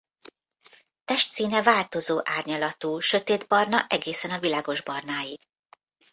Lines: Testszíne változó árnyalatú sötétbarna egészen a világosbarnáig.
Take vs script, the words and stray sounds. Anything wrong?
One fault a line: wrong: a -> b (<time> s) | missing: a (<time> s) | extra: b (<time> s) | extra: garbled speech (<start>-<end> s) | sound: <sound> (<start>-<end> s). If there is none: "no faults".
no faults